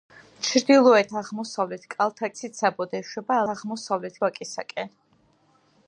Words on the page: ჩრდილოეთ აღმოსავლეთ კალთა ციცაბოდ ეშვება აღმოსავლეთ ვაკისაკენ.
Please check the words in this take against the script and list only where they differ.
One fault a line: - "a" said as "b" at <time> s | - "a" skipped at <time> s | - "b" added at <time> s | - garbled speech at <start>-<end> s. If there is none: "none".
none